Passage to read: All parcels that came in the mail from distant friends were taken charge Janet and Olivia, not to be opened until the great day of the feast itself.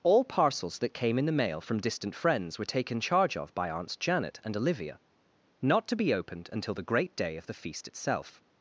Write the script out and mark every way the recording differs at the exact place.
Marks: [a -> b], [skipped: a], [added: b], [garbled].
All parcels that came in the mail from distant friends were taken charge [added: of by Aunts] Janet and Olivia, not to be opened until the great day of the feast itself.